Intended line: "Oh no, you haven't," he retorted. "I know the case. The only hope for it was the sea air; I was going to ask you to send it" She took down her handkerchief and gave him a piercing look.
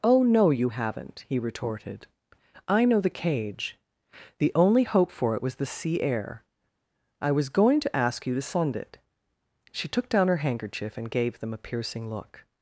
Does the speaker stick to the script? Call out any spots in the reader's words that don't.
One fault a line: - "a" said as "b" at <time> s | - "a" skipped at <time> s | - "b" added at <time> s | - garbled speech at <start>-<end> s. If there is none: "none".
- "case" said as "cage" at 3.1 s
- "him" said as "them" at 11.4 s